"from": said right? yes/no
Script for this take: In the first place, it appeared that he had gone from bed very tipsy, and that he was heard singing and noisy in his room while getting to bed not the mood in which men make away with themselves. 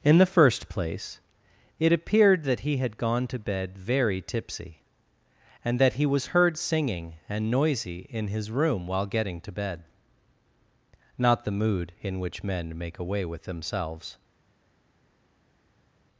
no